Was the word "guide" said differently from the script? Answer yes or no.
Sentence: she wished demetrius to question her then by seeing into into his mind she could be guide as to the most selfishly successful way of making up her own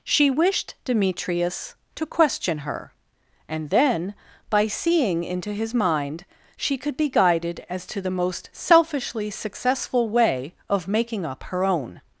yes